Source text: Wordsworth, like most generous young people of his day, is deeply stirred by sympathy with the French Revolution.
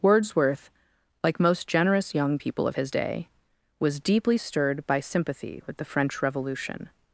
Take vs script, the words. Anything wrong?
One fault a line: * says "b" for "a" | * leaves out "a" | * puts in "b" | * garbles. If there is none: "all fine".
* says "was" for "is"